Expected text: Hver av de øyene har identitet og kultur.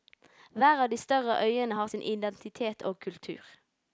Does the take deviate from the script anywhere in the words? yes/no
yes